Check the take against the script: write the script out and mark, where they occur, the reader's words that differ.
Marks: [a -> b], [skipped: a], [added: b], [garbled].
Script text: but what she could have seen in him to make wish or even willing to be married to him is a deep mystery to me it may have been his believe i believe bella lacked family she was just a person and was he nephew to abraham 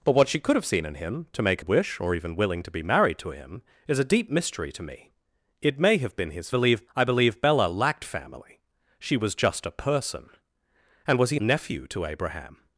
but what she could have seen in him to make wish or even willing to be married to him is a deep mystery to me it may have been his believe i believe bella lacked family she was just a person and was he nephew to abraham